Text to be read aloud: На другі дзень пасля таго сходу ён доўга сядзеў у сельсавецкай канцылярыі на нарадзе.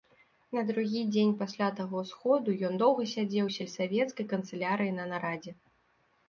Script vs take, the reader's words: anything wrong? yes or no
no